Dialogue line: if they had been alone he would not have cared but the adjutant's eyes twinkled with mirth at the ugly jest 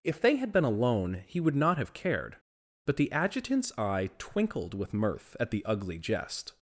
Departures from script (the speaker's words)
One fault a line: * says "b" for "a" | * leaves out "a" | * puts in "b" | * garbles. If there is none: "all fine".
* says "eye" for "eyes"